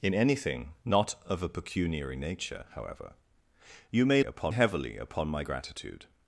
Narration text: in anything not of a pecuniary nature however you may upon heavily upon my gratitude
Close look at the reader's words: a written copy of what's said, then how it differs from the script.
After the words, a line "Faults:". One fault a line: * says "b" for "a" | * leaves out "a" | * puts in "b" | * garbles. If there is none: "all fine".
in anything not of a pecuniary nature however you may upon heavily upon my gratitude
Faults:
all fine